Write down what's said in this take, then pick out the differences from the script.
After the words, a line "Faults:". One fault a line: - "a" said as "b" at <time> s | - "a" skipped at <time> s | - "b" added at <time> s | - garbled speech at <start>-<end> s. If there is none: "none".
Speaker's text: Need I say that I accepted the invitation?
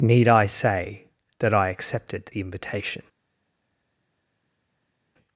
Need I say that I accepted the invitation?
Faults:
none